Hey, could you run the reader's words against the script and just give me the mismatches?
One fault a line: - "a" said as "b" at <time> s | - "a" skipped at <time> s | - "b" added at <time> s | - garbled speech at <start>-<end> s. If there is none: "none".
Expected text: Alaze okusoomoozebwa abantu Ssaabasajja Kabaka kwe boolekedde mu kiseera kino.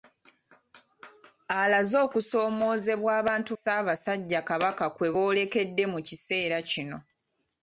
none